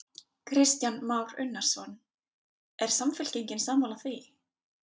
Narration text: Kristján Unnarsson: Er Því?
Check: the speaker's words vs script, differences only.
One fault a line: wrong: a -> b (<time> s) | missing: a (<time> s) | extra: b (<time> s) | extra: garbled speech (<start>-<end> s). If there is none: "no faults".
extra: Már (0.9 s)
extra: Samfylkingin sammála (2.9 s)